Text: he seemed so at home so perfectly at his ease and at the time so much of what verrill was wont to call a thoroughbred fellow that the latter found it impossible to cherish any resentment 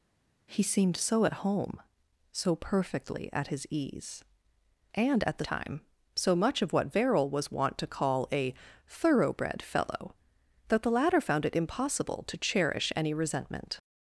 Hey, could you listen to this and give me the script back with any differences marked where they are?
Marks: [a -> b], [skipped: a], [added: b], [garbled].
he seemed so at home so perfectly at his ease and at the time so much of what verrill was wont to call a thoroughbred fellow that the latter found it impossible to cherish any resentment